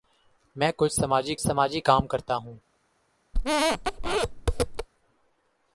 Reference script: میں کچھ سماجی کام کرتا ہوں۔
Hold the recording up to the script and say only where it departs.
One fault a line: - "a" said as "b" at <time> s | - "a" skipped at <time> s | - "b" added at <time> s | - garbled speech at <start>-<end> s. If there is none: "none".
- "سماجی" added at 1.4 s